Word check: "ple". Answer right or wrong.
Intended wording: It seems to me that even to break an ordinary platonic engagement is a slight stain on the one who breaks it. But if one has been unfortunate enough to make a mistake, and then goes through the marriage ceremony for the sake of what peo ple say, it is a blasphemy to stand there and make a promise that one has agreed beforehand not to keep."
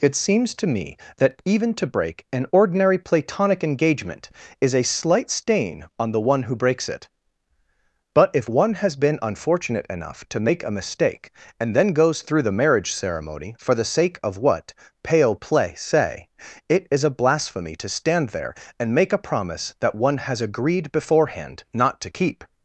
wrong